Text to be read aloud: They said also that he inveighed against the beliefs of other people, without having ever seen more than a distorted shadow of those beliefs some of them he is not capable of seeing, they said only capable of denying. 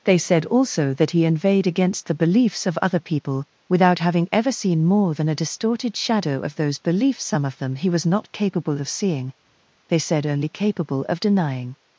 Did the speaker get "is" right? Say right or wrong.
wrong